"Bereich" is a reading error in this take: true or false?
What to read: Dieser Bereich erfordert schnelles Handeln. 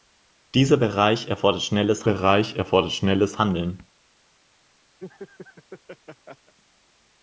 false